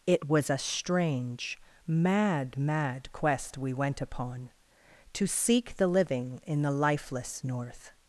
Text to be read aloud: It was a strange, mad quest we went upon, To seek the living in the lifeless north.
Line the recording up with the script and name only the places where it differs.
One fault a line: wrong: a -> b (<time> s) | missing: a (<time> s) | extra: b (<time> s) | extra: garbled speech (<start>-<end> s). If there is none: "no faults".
extra: mad (2.6 s)